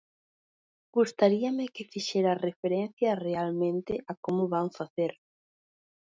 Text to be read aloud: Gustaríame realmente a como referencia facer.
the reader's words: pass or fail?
fail